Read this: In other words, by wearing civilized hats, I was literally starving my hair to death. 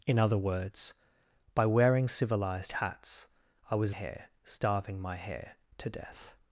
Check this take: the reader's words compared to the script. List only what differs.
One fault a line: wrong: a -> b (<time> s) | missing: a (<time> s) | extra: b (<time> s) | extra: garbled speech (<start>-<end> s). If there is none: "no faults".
wrong: literally -> hair (3.9 s)